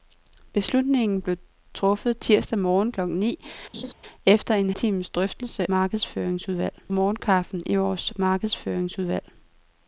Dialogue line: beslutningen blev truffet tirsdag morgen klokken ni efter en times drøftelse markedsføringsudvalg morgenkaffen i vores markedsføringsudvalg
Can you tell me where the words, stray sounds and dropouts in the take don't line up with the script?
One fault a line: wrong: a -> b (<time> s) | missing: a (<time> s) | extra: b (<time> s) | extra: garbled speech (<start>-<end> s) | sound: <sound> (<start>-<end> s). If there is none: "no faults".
sound: laugh (3.7-3.9 s)